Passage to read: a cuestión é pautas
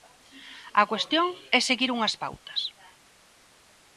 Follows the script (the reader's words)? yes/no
no